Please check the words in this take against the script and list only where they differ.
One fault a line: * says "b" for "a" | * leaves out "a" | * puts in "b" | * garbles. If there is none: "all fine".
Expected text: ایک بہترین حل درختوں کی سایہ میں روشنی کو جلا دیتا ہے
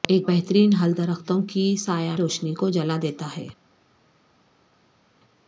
* leaves out "میں"